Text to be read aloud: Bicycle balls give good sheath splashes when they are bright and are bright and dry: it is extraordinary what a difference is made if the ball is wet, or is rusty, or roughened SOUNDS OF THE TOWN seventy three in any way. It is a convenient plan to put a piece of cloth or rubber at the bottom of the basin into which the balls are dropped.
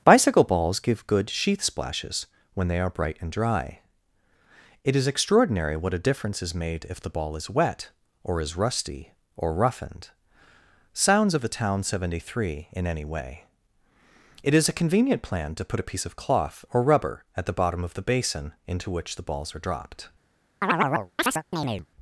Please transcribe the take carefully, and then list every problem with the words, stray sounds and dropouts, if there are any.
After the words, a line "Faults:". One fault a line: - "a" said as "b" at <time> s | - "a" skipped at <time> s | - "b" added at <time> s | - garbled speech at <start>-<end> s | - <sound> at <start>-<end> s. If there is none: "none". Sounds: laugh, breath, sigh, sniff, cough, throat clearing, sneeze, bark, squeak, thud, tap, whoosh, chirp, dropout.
Bicycle balls give good sheath splashes when they are bright and dry: it is extraordinary what a difference is made if the ball is wet, or is rusty, or roughened SOUNDS OF THE TOWN seventy three in any way. It is a convenient plan to put a piece of cloth or rubber at the bottom of the basin into which the balls are dropped.
Faults:
- "are bright and" skipped at 3.3 s
- chirp at 20.6-21.9 s